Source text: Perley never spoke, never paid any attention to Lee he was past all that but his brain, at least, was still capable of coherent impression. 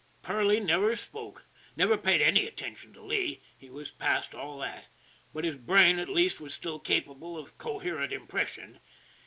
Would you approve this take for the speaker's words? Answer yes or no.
yes